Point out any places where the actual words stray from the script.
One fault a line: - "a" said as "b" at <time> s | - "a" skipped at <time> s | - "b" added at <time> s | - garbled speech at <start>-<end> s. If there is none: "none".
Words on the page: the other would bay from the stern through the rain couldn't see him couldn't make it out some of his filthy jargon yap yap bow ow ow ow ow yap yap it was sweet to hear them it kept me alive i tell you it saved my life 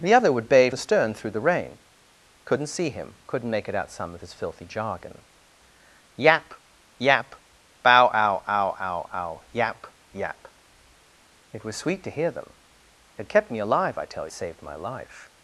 - "from" skipped at 0.7 s
- "you it" skipped at 14.3 s